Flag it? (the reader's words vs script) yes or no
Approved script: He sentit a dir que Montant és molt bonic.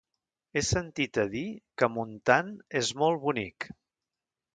no